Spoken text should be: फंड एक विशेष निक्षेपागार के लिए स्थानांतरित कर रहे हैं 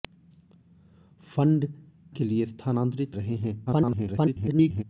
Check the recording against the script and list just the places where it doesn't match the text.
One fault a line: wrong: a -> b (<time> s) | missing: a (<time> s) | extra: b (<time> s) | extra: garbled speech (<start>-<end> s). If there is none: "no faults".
missing: एक विशेष निक्षेपागार (1.7 s)
missing: कर (3.1 s)
extra: garbled speech (3.7-4.8 s)